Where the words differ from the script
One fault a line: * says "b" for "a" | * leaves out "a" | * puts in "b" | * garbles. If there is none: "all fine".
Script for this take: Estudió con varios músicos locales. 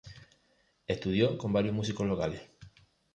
all fine